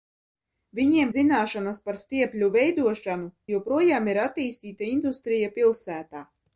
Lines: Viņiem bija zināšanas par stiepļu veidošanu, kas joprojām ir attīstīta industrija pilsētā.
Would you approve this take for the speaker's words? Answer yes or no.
no